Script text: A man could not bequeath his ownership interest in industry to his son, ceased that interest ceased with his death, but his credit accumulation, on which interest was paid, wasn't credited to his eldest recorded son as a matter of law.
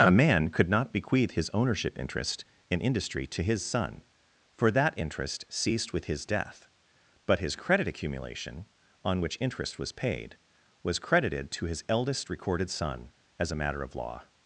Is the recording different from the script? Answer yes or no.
yes